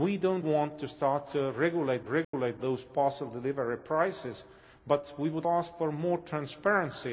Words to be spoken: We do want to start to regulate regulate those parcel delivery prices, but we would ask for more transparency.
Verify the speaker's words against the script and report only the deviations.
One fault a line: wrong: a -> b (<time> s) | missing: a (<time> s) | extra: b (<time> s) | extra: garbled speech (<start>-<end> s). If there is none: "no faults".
no faults